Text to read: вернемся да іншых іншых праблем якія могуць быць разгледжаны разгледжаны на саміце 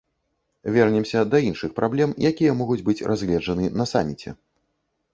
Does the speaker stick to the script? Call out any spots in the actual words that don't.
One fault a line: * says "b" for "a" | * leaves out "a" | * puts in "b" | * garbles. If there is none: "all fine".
* leaves out "іншых"
* leaves out "разгледжаны"